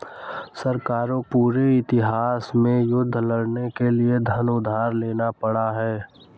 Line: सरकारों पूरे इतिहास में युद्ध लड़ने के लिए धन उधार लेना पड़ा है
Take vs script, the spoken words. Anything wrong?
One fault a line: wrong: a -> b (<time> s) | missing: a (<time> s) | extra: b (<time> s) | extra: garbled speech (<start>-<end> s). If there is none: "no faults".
no faults